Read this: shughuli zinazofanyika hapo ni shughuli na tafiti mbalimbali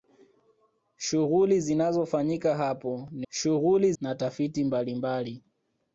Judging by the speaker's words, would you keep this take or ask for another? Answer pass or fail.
pass